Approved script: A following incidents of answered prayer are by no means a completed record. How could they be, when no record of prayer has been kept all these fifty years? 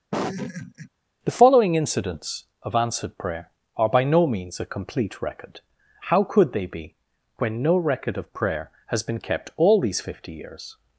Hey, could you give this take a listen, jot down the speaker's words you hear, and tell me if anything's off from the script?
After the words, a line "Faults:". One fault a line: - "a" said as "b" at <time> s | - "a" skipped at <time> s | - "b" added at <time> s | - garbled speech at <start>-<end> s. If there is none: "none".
The following incidents of answered prayer are by no means a complete record. How could they be, when no record of prayer has been kept all these fifty years?
Faults:
- "A" said as "The" at 1.2 s
- "completed" said as "complete" at 4.7 s